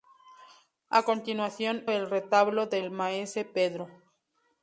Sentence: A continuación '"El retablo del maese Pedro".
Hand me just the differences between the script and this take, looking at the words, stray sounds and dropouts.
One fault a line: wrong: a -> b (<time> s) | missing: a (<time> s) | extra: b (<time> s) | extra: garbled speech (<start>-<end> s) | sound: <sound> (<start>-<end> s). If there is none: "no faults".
no faults